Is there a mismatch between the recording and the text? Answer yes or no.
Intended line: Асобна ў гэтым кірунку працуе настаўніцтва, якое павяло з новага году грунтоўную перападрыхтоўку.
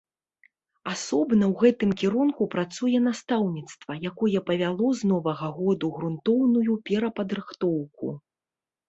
no